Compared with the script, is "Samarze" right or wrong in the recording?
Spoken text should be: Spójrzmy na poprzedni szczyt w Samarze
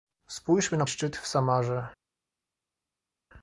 right